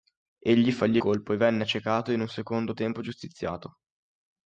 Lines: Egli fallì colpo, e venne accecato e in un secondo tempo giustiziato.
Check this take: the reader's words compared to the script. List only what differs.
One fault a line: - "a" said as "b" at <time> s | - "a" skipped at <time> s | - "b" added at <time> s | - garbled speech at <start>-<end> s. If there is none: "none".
none